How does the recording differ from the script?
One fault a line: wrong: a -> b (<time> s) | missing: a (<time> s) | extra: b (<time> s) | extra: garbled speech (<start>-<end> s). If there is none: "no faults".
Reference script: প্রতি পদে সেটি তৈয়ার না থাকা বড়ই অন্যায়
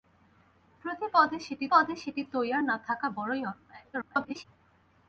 extra: পদে সেটি (1.7 s)
extra: garbled speech (3.9-4.5 s)